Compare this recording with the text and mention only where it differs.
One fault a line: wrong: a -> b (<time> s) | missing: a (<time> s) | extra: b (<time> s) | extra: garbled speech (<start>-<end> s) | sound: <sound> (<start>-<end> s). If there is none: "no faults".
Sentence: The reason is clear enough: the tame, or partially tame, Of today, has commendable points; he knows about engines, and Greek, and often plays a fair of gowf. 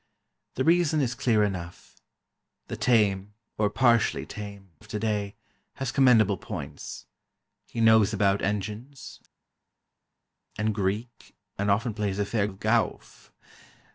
no faults